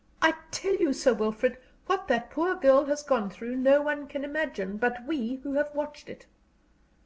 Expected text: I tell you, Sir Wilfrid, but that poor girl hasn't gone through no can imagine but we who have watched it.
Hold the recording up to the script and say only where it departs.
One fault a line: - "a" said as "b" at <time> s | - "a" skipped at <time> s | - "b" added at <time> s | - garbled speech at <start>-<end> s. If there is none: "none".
- "but" said as "what" at 1.9 s
- "hasn't" said as "has" at 2.8 s
- "one" added at 3.8 s